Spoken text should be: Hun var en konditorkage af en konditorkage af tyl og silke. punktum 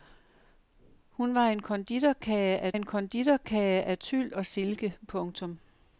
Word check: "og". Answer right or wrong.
right